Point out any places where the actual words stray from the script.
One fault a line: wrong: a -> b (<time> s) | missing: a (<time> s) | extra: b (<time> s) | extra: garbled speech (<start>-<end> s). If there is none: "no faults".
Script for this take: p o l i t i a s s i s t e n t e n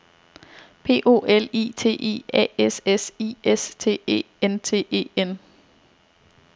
no faults